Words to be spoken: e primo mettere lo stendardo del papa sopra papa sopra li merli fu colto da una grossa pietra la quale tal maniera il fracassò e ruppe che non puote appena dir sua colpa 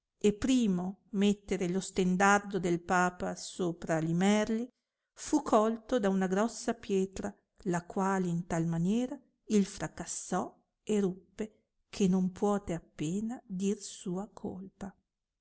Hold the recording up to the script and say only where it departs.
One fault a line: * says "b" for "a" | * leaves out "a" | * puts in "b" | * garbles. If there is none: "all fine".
* leaves out "papa sopra"
* puts in "in"